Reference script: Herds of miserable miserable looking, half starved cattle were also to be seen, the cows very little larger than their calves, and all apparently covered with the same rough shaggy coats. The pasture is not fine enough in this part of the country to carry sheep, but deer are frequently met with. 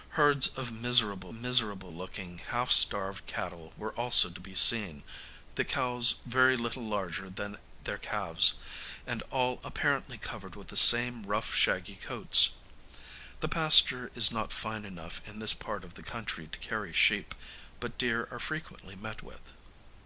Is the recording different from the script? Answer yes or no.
no